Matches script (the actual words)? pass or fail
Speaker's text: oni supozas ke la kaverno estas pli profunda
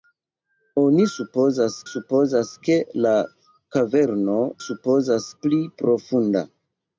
fail